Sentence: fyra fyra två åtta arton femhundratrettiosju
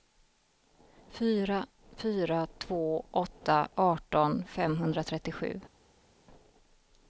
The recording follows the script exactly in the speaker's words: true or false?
true